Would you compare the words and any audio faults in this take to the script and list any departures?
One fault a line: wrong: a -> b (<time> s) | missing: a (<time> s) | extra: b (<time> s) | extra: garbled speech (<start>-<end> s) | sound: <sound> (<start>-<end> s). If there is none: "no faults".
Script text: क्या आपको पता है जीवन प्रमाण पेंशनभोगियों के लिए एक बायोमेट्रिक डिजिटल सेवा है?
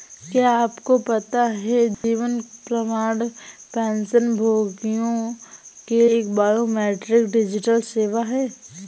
sound: dropout (1.9-2.0 s)
missing: लिए (6.0 s)